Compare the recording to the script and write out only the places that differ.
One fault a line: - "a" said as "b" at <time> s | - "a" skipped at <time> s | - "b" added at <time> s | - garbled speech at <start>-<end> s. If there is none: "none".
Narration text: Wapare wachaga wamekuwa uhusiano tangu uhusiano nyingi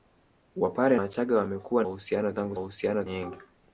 none